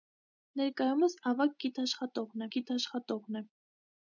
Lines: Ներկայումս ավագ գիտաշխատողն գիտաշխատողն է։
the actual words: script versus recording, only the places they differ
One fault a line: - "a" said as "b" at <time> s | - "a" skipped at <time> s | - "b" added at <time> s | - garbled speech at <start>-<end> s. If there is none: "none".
none